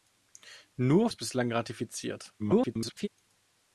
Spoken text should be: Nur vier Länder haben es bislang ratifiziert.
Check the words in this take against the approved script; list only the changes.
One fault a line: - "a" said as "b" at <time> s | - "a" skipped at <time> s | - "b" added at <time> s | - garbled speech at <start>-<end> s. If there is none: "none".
- "vier Länder haben" skipped at 1.1 s
- garbled speech at 2.4-3.1 s